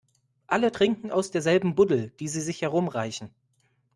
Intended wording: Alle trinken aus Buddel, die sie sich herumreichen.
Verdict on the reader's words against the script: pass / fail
fail